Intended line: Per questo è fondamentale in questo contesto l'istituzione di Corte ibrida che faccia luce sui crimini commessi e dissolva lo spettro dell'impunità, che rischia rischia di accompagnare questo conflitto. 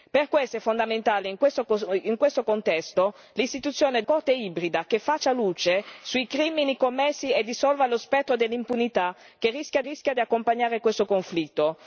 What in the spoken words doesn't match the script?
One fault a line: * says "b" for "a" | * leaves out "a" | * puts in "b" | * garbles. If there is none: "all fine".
all fine